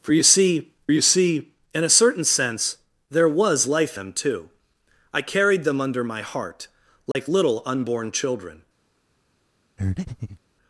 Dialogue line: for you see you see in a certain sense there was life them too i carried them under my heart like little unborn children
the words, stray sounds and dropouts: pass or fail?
fail